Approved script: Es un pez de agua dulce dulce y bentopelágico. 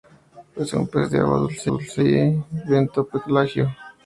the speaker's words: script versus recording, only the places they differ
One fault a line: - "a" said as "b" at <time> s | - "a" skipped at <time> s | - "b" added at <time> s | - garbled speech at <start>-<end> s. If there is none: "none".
none